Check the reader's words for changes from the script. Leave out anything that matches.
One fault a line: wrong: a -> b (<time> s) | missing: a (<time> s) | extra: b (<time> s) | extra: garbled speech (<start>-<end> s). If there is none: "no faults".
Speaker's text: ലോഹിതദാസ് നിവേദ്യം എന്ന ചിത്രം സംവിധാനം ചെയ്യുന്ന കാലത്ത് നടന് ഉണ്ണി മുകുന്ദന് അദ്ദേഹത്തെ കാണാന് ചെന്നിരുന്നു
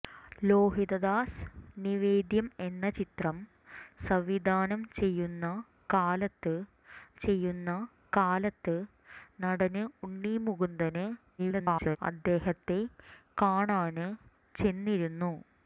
extra: ചെയ്യുന്ന കാലത്ത് (7.2 s)
extra: garbled speech (11.4-12.0 s)